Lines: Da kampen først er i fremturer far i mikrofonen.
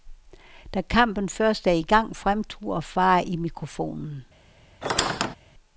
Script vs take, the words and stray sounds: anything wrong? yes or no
yes